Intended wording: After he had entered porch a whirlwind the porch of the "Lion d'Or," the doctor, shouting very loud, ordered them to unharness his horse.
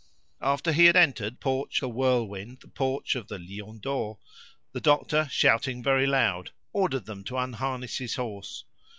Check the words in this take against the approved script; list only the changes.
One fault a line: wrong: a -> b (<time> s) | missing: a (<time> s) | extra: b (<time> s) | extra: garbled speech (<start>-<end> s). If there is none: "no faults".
no faults